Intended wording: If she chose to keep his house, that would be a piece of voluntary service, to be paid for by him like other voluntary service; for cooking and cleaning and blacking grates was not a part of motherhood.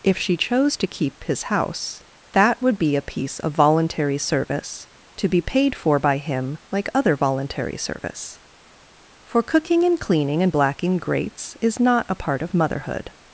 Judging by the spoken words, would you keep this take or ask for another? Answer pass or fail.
fail